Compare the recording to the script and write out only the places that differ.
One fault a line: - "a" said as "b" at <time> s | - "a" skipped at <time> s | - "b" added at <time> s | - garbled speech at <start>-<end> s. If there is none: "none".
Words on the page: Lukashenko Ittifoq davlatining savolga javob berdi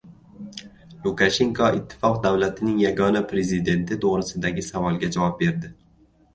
- "yagona prezidenti to‘g‘risidagi" added at 2.8 s